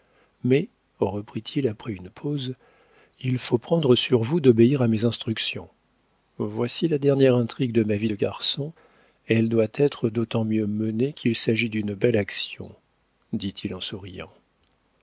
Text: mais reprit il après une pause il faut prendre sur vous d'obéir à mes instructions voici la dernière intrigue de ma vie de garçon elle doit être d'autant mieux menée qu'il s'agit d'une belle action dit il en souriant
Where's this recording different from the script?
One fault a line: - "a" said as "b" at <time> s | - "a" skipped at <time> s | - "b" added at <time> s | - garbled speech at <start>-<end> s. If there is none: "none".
none